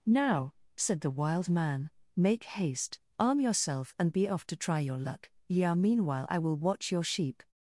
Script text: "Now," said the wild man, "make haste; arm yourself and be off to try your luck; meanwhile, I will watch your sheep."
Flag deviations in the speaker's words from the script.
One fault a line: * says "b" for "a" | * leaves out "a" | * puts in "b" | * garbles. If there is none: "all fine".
* puts in "yeah"